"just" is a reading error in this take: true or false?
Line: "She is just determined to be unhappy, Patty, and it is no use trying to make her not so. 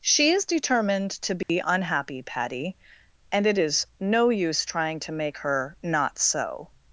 true